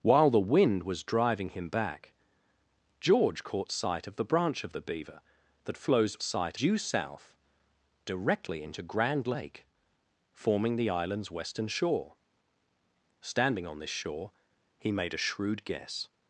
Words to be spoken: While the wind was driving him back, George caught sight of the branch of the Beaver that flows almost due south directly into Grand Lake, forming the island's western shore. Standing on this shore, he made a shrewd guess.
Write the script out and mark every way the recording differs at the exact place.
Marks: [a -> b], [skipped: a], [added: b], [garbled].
While the wind was driving him back, George caught sight of the branch of the Beaver that flows [almost -> sight] due south directly into Grand Lake, forming the island's western shore. Standing on this shore, he made a shrewd guess.